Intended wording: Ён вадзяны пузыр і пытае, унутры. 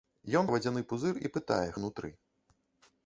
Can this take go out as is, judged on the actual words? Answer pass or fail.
pass